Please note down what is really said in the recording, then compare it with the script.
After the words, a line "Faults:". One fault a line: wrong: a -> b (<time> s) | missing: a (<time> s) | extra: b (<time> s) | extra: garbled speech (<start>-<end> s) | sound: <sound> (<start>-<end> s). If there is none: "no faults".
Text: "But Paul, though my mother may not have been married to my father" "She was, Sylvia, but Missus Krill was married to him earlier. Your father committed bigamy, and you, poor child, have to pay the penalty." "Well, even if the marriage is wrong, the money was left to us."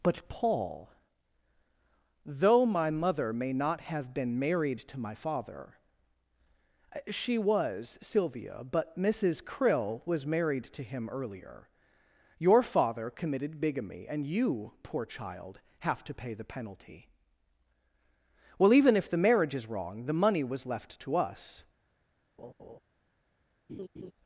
"But Paul, though my mother may not have been married to my father" "She was, Sylvia, but Missus Krill was married to him earlier. Your father committed bigamy, and you, poor child, have to pay the penalty." "Well, even if the marriage is wrong, the money was left to us."
Faults:
sound: laugh (22.4-22.8 s)
sound: laugh (23.7-24.1 s)